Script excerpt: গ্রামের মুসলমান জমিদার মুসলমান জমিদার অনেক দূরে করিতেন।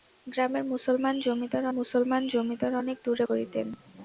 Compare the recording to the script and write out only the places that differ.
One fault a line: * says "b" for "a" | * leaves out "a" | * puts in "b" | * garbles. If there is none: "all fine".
all fine